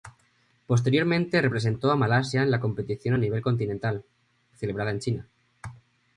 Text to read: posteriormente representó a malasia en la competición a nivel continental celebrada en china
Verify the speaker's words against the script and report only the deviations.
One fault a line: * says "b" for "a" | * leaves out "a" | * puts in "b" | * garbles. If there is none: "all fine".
all fine